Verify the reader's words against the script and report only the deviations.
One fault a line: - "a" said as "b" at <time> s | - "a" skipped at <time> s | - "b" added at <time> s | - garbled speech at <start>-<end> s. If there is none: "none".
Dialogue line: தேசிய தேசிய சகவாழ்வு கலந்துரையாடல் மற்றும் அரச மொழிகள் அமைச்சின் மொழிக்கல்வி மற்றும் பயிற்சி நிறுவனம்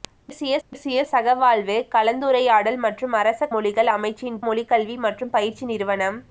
none